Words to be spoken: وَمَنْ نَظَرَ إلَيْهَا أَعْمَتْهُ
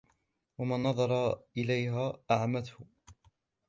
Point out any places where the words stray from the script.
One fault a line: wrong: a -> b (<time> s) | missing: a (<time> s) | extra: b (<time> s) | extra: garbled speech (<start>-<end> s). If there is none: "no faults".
no faults